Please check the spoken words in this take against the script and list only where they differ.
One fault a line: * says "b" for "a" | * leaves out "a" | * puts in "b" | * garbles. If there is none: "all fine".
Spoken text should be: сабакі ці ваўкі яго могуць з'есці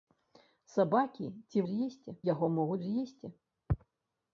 * says "з'есці" for "ваўкі"